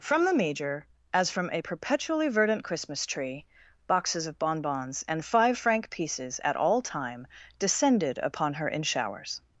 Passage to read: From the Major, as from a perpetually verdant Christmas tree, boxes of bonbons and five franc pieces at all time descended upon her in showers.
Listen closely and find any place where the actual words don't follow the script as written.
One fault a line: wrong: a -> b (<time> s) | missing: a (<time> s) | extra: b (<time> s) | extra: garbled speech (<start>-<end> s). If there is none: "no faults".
no faults